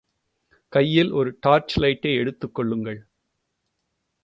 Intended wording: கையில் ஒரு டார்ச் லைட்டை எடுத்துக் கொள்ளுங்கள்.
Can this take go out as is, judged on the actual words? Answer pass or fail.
pass